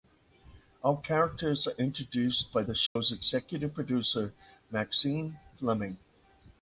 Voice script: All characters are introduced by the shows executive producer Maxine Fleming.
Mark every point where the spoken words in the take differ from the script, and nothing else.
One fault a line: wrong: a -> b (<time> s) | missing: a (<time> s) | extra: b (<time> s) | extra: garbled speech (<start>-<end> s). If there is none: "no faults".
no faults